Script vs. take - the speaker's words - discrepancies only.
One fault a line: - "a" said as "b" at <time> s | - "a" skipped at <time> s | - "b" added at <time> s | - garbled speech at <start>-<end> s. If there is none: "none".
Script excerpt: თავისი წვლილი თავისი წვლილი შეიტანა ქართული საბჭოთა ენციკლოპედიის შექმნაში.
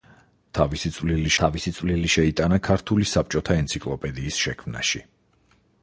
none